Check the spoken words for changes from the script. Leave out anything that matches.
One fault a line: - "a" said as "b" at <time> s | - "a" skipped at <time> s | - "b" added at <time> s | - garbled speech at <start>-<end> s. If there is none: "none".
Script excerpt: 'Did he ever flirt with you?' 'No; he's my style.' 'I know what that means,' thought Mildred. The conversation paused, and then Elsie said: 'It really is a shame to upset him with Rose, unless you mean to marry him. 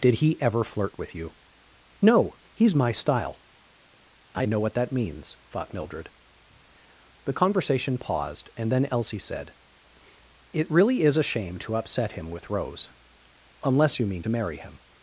none